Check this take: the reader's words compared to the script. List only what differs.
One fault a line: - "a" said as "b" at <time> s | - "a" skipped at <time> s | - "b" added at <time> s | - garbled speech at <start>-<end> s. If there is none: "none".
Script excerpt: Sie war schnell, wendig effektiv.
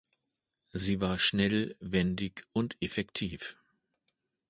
- "und" added at 2.5 s